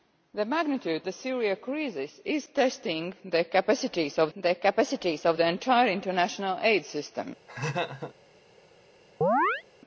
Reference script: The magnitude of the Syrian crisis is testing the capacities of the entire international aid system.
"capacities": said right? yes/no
yes